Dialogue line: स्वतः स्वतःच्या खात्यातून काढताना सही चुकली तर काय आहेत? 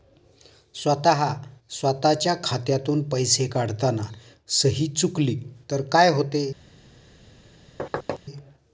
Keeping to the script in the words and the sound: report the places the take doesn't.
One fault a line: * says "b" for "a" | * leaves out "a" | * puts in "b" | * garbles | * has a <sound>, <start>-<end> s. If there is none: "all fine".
* puts in "पैसे"
* says "होते" for "आहेत"
* has a thud, 7.8-8.2 s